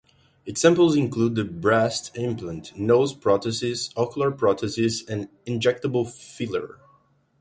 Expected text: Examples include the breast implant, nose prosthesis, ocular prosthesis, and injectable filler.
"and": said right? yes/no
yes